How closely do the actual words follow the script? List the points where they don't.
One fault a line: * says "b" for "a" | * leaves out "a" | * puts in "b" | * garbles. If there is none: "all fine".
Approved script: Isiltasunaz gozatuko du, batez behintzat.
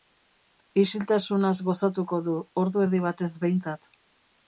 * puts in "ordu erdi"